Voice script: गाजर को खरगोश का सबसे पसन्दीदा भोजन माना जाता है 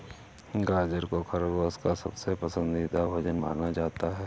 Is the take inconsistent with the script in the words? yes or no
no